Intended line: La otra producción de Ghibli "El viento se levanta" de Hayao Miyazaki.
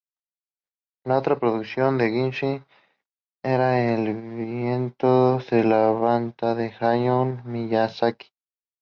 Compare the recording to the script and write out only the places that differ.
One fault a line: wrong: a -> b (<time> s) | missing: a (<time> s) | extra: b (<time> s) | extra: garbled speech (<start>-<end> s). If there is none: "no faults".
extra: era (3.4 s)